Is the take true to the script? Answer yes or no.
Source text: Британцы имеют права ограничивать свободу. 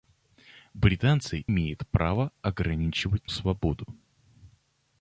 yes